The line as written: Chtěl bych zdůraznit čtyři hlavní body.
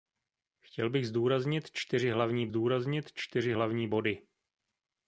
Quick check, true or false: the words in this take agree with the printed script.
false